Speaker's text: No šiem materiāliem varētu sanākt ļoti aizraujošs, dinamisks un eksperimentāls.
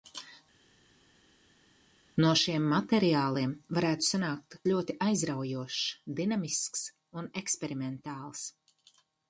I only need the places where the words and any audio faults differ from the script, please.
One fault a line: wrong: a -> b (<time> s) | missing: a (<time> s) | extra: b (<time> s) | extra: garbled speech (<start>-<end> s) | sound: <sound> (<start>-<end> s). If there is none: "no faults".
no faults